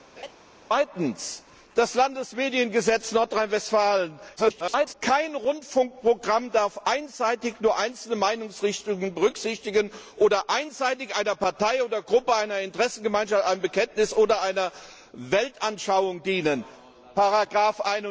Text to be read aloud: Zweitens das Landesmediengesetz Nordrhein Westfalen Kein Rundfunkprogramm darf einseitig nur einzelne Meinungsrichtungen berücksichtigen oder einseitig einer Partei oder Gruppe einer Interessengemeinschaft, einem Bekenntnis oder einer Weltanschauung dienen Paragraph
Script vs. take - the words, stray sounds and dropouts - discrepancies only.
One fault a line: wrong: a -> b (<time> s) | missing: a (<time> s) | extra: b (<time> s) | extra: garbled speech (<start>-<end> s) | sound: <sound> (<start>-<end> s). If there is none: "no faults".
sound: laugh (0.2-0.3 s)
extra: garbled speech (4.4-4.9 s)